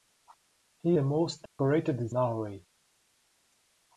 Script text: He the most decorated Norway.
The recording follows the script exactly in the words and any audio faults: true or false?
false